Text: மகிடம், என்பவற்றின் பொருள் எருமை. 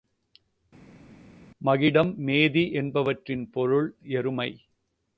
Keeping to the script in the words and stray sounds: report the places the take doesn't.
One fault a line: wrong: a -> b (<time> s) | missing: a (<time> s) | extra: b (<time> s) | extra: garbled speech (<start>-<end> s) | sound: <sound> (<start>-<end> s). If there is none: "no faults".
extra: மேதி (2.2 s)